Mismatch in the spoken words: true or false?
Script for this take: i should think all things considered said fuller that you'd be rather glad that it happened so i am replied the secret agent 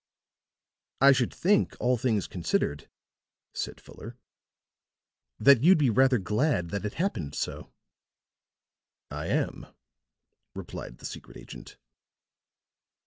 false